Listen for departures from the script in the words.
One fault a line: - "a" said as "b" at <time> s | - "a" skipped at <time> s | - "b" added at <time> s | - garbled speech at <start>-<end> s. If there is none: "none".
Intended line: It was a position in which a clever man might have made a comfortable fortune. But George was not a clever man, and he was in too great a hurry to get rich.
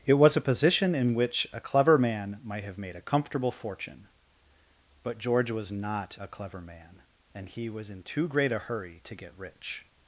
none